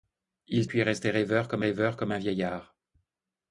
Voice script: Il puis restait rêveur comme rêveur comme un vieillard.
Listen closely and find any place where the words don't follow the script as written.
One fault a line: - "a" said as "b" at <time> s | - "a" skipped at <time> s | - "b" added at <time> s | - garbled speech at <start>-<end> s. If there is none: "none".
none